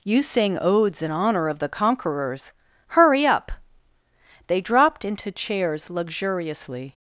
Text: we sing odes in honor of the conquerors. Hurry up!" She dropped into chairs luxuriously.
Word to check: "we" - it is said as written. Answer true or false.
false